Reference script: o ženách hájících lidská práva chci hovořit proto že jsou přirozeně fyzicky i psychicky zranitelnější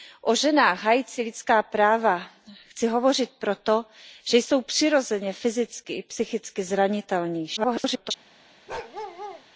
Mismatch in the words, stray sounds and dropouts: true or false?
true